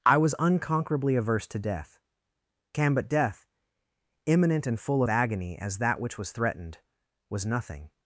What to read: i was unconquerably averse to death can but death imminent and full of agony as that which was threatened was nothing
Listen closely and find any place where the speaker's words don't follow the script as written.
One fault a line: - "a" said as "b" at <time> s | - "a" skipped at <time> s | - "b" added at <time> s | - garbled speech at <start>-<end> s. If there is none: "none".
none